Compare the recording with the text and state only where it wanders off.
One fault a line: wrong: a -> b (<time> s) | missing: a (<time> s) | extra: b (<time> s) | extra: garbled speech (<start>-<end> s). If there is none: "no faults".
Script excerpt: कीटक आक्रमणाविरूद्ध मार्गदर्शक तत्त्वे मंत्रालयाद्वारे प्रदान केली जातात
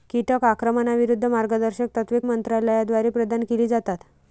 no faults